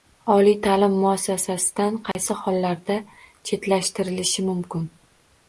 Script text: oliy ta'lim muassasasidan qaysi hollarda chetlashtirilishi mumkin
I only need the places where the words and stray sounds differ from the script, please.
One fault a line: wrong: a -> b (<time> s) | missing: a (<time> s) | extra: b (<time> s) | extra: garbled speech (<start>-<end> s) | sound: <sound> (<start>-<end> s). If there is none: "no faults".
sound: dropout (2.1-2.1 s)